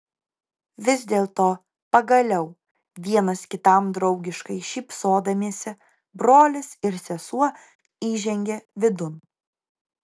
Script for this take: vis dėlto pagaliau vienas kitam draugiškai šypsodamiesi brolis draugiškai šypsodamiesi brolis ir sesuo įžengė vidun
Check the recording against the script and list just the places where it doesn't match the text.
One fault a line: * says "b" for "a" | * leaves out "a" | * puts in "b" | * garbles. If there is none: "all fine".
* leaves out "draugiškai šypsodamiesi brolis"